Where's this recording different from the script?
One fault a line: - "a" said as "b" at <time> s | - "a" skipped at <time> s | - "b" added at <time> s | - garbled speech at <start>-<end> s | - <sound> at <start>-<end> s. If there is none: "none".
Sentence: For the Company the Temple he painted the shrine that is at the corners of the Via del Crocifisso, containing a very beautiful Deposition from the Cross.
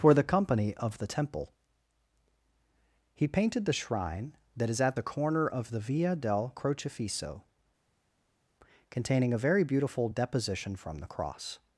- "of" added at 0.8 s
- "corners" said as "corner" at 5.0 s